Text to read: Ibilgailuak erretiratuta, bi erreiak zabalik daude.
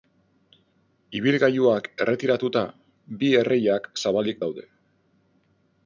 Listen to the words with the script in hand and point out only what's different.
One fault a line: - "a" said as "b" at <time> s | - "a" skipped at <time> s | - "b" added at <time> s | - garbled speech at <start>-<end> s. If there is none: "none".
none